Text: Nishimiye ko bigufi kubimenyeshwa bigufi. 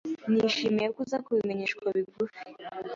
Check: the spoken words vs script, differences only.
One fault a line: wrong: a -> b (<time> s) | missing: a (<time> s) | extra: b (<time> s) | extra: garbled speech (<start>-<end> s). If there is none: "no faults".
wrong: bigufi -> uza (1.1 s)